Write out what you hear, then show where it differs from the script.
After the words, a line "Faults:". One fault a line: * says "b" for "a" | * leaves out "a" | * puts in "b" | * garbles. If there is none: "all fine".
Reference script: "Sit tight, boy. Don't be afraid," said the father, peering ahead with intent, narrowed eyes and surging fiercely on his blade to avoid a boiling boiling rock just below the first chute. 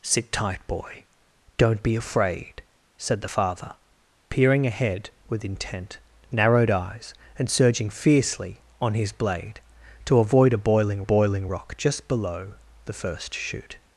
"Sit tight, boy. Don't be afraid," said the father, peering ahead with intent, narrowed eyes and surging fiercely on his blade to avoid a boiling boiling rock just below the first chute.
Faults:
all fine